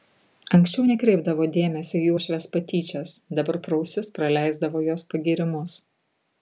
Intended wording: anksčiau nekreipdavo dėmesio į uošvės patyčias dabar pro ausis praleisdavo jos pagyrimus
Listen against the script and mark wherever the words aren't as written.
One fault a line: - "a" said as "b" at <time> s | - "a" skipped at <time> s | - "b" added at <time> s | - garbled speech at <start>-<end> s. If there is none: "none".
none